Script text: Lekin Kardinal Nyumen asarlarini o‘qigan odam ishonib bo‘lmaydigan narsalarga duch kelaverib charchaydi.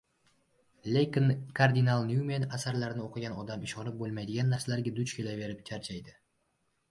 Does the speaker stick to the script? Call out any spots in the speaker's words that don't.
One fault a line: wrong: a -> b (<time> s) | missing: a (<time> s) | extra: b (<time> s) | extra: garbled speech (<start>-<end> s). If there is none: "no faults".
no faults